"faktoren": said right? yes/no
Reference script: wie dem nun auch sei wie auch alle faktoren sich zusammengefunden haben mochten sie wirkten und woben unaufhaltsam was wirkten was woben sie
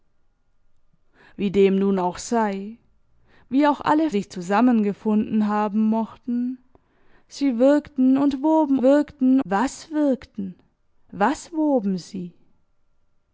no